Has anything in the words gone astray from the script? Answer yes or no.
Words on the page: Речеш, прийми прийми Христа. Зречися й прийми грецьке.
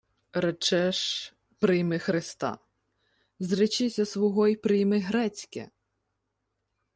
yes